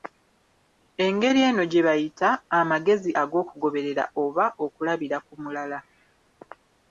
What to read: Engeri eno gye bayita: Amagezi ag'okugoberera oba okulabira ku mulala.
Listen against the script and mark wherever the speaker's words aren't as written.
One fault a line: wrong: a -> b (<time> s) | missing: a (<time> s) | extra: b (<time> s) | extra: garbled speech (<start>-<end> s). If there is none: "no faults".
no faults